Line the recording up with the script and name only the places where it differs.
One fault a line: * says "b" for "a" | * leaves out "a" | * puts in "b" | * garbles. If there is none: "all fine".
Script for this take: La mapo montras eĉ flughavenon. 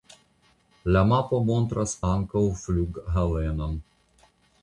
* says "ankaŭ" for "eĉ"